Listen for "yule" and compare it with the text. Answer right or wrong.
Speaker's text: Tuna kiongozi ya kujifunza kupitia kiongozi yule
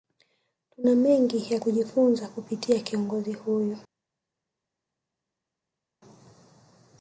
wrong